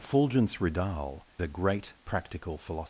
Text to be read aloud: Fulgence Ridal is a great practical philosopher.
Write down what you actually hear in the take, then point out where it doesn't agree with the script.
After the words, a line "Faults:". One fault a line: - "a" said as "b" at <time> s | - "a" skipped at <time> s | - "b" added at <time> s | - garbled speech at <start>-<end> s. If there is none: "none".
Fulgence Ridal a great practical philosopher.
Faults:
- "is" skipped at 1.3 s